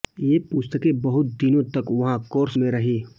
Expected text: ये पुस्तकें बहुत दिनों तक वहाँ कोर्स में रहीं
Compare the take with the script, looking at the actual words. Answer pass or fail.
pass